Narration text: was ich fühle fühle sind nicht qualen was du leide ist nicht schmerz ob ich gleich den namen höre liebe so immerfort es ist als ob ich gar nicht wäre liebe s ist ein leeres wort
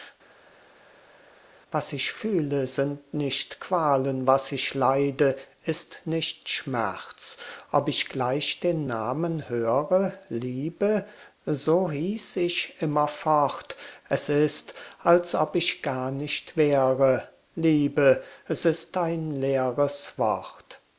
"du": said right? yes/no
no